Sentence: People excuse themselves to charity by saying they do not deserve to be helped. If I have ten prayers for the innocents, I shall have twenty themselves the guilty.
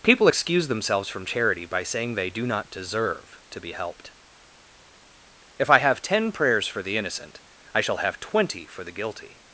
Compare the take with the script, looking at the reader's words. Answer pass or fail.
fail